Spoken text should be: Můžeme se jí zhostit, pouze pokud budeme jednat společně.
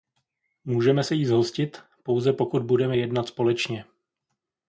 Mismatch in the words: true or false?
false